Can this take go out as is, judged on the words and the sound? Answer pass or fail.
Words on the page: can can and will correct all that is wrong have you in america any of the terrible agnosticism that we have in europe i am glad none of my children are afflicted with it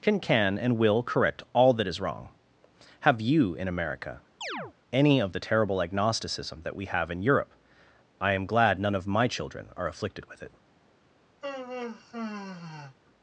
fail